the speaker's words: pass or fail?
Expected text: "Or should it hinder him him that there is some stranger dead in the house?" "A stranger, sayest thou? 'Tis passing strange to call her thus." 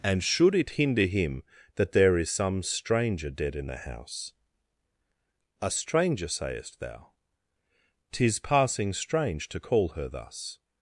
fail